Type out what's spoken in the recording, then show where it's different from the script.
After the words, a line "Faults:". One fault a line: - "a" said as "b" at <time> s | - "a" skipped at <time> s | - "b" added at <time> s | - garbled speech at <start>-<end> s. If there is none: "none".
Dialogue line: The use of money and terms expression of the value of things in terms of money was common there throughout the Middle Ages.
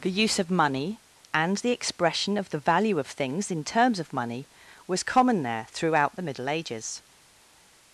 The use of money and the expression of the value of things in terms of money was common there throughout the Middle Ages.
Faults:
- "terms" said as "the" at 1.6 s